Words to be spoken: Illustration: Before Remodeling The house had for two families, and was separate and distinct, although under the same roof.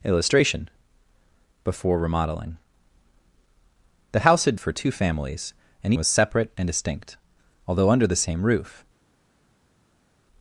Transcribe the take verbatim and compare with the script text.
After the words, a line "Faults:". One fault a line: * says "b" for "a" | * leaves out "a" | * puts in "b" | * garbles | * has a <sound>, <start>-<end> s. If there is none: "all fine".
Illustration: Before Remodeling The house had for two families, and was separate and distinct, although under the same roof.
Faults:
all fine